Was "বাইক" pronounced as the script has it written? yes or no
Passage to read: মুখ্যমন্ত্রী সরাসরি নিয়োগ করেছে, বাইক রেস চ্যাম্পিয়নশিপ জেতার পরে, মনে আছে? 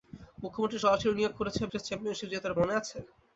no